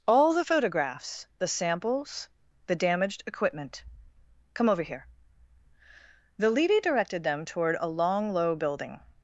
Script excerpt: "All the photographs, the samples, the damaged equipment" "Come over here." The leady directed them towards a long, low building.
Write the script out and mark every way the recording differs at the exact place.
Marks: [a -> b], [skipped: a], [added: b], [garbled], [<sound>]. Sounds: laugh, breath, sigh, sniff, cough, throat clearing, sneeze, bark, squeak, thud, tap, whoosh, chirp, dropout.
"All the photographs, the samples, the damaged equipment" "Come over here." The leady directed them [towards -> toward] a long, low building.